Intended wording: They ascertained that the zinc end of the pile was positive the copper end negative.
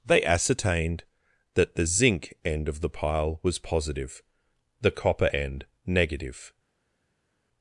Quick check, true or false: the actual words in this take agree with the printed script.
true